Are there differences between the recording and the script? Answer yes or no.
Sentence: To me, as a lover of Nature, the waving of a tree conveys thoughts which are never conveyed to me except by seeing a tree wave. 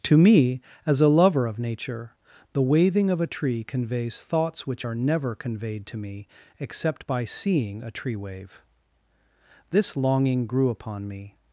yes